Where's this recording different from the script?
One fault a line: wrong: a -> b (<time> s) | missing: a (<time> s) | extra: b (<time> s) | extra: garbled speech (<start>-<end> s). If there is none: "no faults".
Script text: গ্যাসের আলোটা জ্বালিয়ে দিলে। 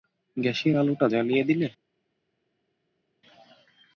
no faults